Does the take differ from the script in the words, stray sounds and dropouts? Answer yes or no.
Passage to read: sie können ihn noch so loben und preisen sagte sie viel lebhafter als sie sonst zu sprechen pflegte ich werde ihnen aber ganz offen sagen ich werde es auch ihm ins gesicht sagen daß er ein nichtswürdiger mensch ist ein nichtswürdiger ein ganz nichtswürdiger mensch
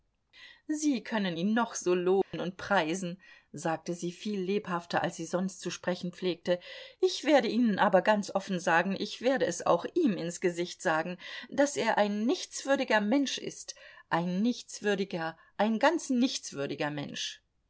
yes